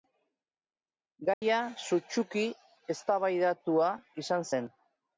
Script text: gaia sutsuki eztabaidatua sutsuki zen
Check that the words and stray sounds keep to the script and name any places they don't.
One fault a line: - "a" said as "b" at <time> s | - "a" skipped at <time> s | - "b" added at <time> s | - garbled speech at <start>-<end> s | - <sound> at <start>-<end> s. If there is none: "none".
- dropout at 1.3-1.4 s
- "sutsuki" said as "izan" at 4.3 s